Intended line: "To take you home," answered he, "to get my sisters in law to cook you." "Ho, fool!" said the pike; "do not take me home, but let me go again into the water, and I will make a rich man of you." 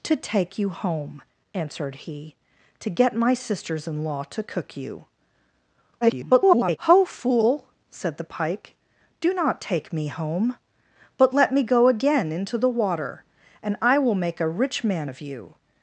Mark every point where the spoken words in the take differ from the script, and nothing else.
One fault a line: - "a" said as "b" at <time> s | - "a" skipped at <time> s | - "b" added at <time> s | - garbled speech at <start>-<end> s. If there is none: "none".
- garbled speech at 6.0-6.8 s